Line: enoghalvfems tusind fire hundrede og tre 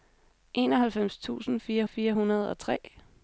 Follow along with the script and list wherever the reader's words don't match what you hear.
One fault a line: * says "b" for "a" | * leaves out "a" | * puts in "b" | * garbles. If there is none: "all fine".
* puts in "fire"